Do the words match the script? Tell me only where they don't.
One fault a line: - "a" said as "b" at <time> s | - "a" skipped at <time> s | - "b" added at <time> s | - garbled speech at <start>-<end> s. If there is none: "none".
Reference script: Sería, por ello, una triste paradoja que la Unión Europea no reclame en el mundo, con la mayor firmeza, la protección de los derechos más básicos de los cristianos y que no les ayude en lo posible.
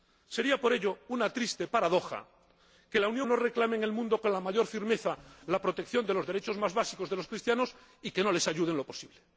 - "Europea" skipped at 3.3 s